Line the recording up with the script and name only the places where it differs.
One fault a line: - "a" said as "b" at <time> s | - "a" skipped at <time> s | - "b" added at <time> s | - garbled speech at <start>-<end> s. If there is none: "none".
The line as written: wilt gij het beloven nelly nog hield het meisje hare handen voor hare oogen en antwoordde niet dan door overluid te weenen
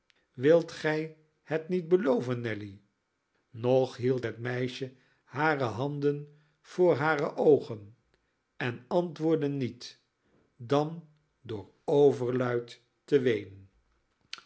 - "niet" added at 1.7 s